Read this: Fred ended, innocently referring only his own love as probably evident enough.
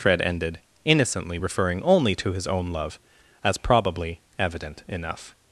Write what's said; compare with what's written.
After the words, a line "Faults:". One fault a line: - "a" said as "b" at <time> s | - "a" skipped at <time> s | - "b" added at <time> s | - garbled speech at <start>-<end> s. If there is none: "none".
Fred ended, innocently referring only to his own love as probably evident enough.
Faults:
- "to" added at 2.2 s